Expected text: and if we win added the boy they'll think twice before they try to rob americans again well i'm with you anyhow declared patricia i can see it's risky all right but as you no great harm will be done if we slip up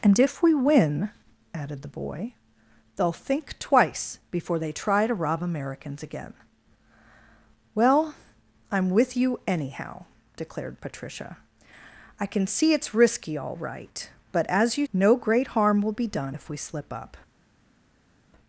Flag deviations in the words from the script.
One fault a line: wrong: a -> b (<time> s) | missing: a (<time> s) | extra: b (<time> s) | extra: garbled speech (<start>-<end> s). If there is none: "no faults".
no faults